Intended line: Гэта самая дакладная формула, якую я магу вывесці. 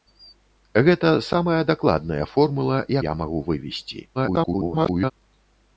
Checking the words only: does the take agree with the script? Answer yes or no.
no